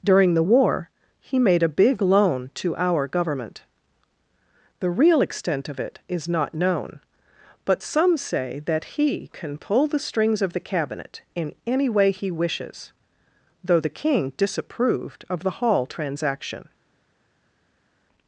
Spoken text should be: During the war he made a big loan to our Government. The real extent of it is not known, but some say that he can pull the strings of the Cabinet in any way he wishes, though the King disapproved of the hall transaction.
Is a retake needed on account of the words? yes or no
no